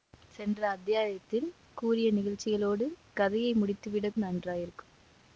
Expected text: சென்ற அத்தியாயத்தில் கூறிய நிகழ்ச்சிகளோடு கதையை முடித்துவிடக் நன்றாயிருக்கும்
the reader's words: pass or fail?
pass